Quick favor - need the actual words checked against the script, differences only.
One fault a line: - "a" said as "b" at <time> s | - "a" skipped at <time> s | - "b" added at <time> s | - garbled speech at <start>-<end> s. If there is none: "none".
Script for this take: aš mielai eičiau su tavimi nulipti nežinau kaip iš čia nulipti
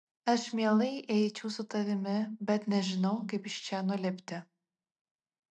- "nulipti" said as "bet" at 2.5 s